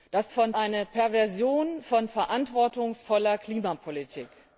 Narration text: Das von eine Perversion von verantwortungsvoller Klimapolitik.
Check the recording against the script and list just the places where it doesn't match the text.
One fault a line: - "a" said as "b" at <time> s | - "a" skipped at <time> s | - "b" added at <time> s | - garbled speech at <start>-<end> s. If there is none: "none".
none